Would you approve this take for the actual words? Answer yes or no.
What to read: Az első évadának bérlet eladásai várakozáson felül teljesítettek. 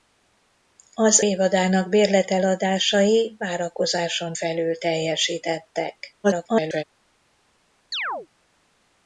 no